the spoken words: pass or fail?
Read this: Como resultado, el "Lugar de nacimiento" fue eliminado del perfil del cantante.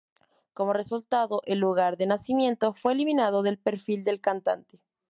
pass